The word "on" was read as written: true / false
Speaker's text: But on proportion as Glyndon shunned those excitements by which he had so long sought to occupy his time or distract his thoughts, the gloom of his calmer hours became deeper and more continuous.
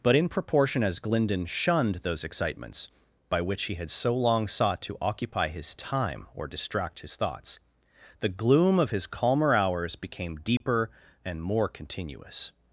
false